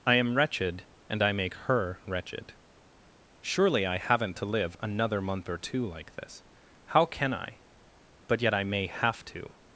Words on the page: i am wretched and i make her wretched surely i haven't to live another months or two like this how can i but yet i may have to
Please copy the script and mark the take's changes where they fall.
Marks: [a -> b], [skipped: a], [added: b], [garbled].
i am wretched and i make her wretched surely i haven't to live another [months -> month] or two like this how can i but yet i may have to